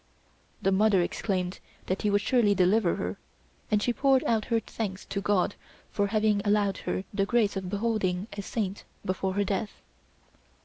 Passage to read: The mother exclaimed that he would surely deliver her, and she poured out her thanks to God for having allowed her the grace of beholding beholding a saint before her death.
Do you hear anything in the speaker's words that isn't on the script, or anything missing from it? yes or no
yes